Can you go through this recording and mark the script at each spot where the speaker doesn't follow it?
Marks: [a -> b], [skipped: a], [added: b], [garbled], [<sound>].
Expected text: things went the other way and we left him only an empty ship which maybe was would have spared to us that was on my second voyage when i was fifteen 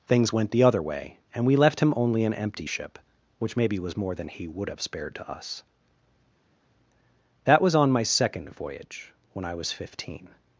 things went the other way and we left him only an empty ship which maybe was [added: more than he] would have spared to us that was on my second voyage when i was fifteen